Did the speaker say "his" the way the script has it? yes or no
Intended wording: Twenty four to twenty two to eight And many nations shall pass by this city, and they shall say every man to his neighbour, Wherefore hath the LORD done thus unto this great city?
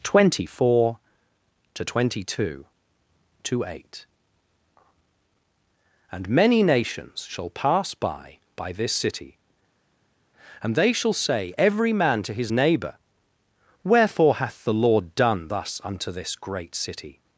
yes